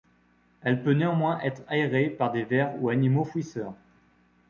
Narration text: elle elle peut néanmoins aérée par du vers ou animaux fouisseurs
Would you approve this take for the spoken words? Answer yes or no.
no